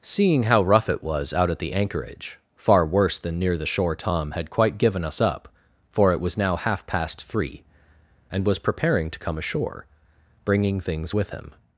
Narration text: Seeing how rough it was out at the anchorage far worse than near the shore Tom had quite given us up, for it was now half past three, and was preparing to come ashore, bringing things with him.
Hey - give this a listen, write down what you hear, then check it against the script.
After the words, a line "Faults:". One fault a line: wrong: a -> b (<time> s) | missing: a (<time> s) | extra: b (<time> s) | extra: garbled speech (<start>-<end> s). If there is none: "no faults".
Seeing how rough it was out at the anchorage far worse than near the shore Tom had quite given us up, for it was now half past three, and was preparing to come ashore, bringing things with him.
Faults:
no faults